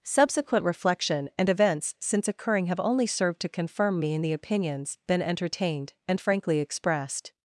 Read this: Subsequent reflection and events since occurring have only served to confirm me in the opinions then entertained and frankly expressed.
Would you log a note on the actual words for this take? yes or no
yes